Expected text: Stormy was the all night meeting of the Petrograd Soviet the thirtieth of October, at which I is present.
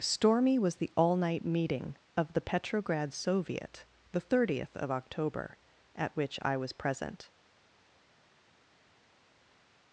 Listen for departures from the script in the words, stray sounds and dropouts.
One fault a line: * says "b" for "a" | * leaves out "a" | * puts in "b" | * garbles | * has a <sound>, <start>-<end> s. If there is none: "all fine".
* says "was" for "is"